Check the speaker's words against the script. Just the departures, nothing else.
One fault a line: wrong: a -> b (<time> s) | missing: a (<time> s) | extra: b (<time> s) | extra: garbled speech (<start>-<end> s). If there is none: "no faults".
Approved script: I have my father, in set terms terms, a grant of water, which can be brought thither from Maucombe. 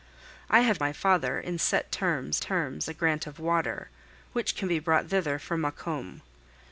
no faults